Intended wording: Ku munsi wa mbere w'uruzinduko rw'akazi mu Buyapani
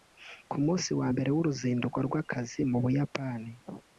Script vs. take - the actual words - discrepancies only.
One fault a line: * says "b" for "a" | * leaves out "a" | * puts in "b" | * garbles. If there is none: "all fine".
all fine